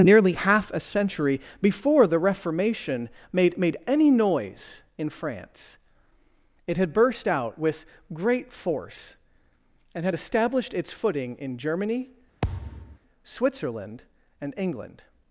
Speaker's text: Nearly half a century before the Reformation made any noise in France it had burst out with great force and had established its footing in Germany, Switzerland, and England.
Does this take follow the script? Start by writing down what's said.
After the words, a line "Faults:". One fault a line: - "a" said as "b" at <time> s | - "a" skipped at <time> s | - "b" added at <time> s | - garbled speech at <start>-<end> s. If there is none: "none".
Nearly half a century before the Reformation made made any noise in France it had burst out with great force and had established its footing in Germany, Switzerland, and England.
Faults:
- "made" added at 3.6 s